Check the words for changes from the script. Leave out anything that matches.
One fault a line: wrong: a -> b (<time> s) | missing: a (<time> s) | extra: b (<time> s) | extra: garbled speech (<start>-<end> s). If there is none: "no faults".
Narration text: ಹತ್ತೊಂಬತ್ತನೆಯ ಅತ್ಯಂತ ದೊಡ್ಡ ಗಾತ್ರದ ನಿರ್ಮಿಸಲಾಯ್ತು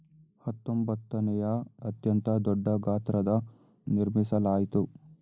no faults